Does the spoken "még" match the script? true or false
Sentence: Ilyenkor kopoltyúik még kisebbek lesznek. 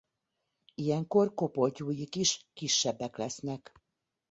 false